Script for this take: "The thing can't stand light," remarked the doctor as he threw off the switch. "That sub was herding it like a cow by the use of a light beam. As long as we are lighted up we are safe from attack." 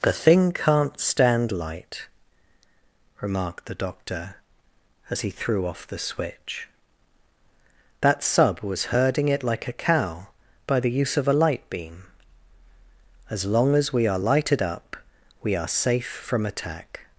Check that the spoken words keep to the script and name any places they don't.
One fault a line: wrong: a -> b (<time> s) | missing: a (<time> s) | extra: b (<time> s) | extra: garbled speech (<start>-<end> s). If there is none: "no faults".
no faults